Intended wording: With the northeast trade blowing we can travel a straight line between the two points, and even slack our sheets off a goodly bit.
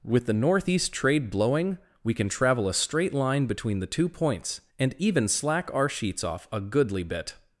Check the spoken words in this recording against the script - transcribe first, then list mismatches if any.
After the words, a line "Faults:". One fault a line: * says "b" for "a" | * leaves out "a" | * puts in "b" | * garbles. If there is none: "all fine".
With the northeast trade blowing we can travel a straight line between the two points, and even slack our sheets off a goodly bit.
Faults:
all fine